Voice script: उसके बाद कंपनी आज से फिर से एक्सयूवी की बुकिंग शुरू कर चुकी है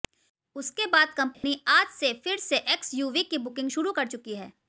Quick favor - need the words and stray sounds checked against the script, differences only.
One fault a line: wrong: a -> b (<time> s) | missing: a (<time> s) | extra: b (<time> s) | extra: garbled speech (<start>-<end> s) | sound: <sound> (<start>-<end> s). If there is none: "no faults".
sound: dropout (1.3-1.4 s)